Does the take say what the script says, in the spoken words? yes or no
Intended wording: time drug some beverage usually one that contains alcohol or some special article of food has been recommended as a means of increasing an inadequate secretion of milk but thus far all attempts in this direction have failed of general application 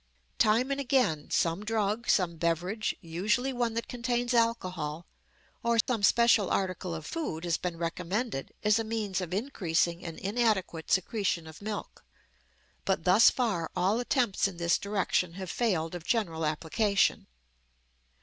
no